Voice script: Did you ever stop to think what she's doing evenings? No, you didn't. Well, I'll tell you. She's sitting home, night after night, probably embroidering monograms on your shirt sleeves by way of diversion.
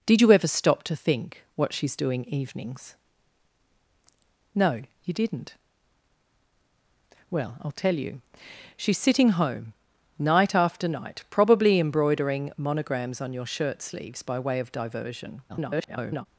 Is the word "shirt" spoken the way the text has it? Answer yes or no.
yes